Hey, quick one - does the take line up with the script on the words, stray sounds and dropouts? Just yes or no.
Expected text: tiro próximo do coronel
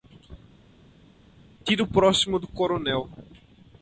yes